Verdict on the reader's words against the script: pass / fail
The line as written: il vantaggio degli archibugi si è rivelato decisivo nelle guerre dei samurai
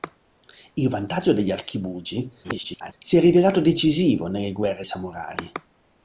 fail